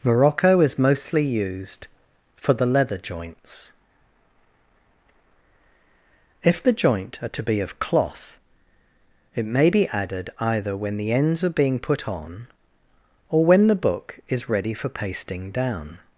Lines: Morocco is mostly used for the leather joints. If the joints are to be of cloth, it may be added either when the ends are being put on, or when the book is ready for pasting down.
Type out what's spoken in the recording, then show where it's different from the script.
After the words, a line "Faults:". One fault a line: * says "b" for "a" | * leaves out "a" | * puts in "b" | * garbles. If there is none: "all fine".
Morocco is mostly used for the leather joints. If the joint are to be of cloth, it may be added either when the ends are being put on, or when the book is ready for pasting down.
Faults:
* says "joint" for "joints"